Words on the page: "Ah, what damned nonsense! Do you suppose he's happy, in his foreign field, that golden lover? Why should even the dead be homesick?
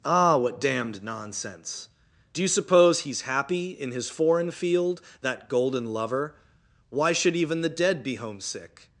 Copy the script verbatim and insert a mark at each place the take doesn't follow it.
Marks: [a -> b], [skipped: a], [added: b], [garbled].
"Ah, what damned nonsense! Do you suppose he's happy, in his foreign field, that golden lover? Why should even the dead be homesick?